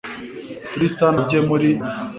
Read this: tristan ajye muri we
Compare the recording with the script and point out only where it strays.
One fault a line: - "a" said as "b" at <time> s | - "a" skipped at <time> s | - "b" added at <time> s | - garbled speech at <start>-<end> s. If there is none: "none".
none